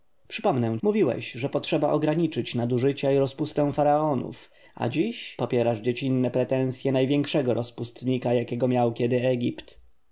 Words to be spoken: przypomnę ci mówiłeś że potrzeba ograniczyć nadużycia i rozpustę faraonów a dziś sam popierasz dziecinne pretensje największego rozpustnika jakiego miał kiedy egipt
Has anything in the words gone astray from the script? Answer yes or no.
yes